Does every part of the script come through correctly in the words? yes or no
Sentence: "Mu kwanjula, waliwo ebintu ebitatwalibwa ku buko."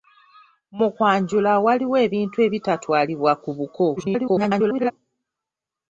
no